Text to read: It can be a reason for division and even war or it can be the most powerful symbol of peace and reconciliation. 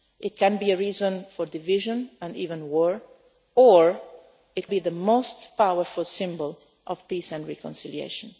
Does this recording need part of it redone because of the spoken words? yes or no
yes